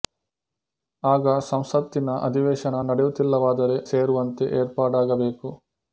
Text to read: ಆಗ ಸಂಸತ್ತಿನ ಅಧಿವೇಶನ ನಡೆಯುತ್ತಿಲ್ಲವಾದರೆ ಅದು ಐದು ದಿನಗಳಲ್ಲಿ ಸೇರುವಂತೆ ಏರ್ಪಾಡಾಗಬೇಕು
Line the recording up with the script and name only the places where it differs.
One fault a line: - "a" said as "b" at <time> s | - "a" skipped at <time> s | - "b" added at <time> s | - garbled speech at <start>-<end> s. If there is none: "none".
- "ಅದು ಐದು ದಿನಗಳಲ್ಲಿ" skipped at 3.8 s